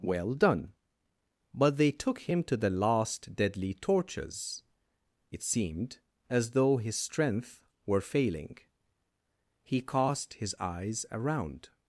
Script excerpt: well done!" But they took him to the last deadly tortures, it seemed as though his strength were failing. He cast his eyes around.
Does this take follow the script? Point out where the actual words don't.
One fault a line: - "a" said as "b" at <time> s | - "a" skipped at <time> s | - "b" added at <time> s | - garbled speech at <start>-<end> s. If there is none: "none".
none